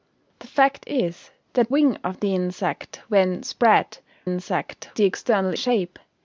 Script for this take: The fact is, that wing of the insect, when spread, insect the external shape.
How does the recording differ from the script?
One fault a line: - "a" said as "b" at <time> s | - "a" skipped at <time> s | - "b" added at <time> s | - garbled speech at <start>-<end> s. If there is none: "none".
none